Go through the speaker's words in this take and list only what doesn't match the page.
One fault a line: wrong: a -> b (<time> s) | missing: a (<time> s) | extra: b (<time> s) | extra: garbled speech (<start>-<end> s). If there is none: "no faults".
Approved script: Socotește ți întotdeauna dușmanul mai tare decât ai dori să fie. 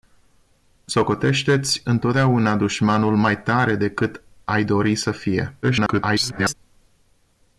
extra: garbled speech (5.6-6.5 s)